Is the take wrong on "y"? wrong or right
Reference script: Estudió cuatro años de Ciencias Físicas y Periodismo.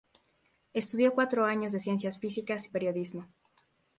wrong